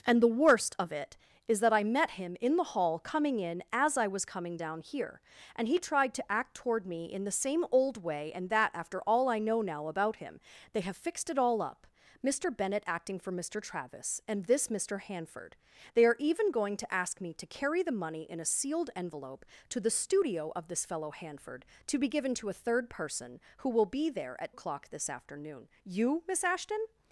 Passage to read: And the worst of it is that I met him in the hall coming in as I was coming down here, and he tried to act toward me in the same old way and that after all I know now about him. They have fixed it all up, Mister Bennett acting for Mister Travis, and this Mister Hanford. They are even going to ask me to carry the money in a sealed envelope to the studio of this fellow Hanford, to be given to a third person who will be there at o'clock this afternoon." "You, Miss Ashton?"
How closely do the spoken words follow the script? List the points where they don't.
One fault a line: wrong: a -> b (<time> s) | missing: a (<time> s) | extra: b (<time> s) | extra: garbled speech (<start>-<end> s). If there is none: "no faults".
no faults